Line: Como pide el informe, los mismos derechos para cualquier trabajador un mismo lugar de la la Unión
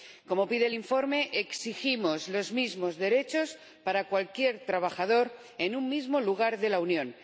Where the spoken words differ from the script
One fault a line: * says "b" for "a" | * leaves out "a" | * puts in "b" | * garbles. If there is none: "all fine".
* puts in "exigimos"
* puts in "en"
* leaves out "la"